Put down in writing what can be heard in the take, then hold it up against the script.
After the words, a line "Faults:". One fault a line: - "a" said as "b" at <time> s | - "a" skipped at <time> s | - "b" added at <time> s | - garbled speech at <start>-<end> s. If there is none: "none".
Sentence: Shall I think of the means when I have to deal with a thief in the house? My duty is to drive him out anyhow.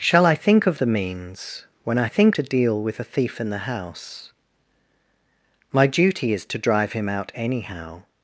Shall I think of the means when I think to deal with a thief in the house? My duty is to drive him out anyhow.
Faults:
- "have" said as "think" at 2.0 s